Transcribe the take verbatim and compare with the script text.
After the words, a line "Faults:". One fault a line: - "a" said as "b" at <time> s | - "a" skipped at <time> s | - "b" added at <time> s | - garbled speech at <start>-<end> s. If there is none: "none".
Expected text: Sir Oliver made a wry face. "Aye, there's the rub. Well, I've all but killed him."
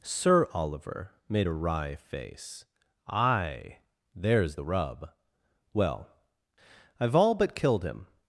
Sir Oliver made a wry face. "Aye, there's the rub. Well, I've all but killed him."
Faults:
none